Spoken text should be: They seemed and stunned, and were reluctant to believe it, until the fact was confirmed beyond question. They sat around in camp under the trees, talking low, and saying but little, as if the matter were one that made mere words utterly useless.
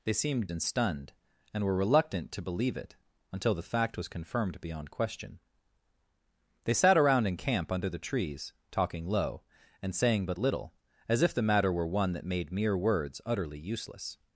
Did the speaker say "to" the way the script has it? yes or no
yes